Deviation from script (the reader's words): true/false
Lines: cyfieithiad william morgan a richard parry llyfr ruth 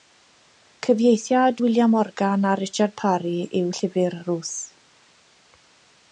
true